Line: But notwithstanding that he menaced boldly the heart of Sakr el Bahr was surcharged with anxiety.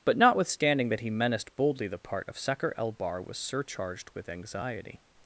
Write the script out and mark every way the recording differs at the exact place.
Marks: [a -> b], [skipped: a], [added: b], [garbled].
But notwithstanding that he menaced boldly the [heart -> part] of Sakr el Bahr was surcharged with anxiety.